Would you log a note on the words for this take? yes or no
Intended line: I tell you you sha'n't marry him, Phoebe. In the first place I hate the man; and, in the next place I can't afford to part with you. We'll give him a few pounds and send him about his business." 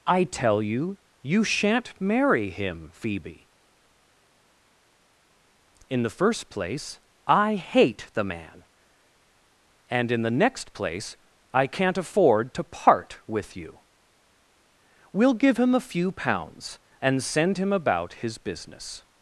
no